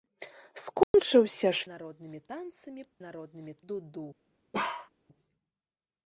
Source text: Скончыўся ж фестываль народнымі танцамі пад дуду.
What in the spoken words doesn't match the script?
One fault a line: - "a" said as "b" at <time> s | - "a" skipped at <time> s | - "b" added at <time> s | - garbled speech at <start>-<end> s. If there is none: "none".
- "фестываль" skipped at 1.7 s
- "пад" said as "народнымі" at 3.1 s